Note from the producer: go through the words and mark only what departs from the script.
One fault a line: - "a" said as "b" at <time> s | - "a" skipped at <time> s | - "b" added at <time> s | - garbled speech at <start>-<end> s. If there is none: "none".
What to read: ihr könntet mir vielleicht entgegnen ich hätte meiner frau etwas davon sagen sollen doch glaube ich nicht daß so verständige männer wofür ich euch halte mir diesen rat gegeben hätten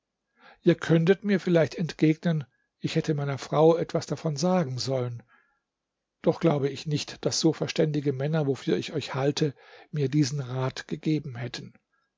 none